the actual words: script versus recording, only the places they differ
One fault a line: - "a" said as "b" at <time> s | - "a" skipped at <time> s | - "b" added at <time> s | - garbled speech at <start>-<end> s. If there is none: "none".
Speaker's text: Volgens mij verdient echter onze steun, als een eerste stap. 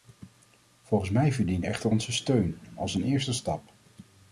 none